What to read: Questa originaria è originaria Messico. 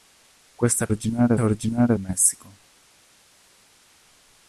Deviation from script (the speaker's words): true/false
false